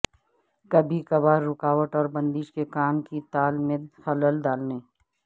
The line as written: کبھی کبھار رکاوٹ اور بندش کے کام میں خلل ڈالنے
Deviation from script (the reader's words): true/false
true